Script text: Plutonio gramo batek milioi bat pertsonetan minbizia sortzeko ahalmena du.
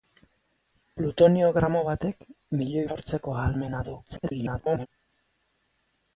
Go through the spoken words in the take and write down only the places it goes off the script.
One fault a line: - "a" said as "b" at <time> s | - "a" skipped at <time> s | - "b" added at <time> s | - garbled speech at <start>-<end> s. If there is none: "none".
- "bat pertsonetan minbizia" skipped at 2.9 s
- garbled speech at 4.1-4.9 s